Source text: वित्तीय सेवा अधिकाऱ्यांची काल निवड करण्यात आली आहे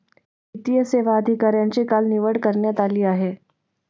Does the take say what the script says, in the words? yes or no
yes